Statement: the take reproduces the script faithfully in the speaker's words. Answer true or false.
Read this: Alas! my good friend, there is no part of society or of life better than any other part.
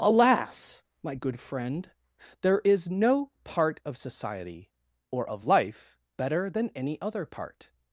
true